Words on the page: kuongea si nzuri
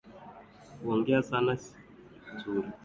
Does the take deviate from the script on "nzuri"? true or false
false